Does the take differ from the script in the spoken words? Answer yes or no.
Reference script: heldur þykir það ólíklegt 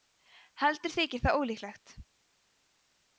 no